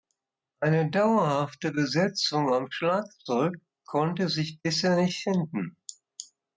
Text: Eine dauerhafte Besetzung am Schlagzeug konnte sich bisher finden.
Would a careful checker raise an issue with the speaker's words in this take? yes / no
yes